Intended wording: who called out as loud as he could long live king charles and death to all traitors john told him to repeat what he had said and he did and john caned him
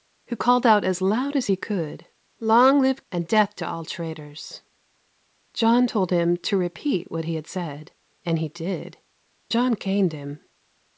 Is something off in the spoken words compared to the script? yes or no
yes